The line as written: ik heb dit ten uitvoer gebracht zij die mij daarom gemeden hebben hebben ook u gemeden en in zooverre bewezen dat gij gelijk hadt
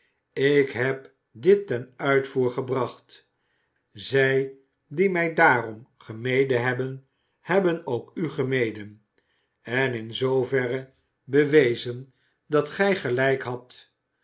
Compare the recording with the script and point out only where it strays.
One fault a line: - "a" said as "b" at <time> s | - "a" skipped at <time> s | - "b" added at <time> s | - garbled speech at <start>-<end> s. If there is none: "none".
none